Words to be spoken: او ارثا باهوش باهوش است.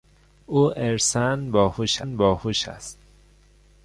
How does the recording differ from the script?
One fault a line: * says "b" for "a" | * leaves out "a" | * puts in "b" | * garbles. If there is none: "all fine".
all fine